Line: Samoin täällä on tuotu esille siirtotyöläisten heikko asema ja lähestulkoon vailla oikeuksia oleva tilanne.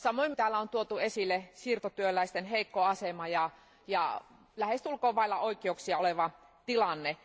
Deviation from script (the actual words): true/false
false